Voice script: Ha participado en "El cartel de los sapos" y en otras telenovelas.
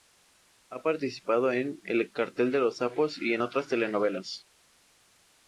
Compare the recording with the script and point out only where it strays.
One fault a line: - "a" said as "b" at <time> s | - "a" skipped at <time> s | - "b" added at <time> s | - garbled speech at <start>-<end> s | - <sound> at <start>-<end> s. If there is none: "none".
none